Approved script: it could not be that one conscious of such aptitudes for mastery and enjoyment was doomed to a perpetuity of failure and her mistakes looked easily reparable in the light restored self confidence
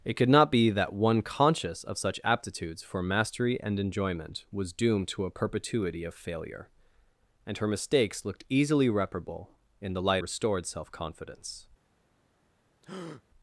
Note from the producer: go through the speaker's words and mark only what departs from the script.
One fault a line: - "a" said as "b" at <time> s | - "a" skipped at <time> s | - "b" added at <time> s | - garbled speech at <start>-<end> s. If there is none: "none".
none